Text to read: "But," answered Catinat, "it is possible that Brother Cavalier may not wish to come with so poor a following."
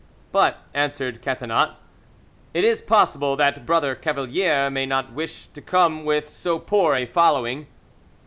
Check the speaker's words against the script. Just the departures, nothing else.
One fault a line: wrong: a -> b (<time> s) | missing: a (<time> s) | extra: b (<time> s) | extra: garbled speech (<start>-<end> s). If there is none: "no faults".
no faults